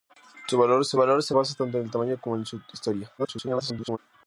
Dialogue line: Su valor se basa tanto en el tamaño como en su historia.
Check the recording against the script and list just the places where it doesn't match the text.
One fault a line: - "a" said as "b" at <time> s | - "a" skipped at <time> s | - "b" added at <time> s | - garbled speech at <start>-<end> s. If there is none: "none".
- "valor se" added at 1.0 s
- garbled speech at 3.2-4.0 s